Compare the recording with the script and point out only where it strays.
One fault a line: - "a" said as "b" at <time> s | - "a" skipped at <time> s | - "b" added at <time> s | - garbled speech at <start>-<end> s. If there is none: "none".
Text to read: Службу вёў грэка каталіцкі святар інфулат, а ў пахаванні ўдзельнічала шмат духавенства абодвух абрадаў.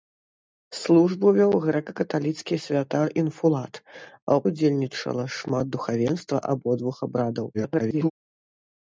- "пахаванні" skipped at 4.4 s
- garbled speech at 7.5-8.1 s